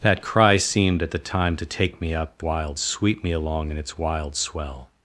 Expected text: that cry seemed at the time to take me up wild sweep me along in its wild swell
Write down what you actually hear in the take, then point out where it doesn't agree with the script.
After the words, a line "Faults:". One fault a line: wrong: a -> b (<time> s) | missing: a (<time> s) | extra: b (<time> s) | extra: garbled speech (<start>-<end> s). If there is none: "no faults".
that cry seemed at the time to take me up wild sweep me along in its wild swell
Faults:
no faults